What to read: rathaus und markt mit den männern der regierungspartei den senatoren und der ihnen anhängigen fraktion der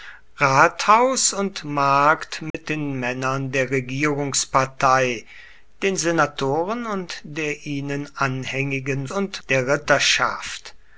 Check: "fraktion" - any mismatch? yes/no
yes